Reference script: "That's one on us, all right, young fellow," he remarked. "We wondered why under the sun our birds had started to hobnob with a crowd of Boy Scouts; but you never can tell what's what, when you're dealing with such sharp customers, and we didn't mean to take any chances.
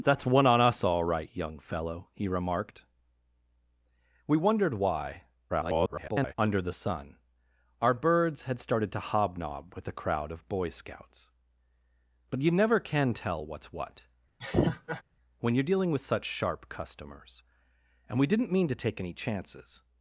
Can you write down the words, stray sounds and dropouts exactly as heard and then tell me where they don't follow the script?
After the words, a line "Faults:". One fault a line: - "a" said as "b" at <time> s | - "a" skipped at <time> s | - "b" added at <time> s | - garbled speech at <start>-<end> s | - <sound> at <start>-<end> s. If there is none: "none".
"That's one on us, all right, young fellow," he remarked. "We wondered why [garbled] under the sun our birds had started to hobnob with a crowd of Boy Scouts; but you never can tell what's what, when you're dealing with such sharp customers, and we didn't mean to take any chances.
Faults:
- garbled speech at 5.5-6.3 s
- laugh at 14.4-15.0 s